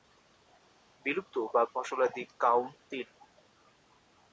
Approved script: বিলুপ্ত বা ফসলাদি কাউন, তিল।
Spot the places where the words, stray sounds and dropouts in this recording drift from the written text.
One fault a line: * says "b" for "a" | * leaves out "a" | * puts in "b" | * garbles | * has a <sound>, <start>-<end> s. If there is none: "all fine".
all fine